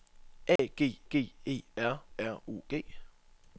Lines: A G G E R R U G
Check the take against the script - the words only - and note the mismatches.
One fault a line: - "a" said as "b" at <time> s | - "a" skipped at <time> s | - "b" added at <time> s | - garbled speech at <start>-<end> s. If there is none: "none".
none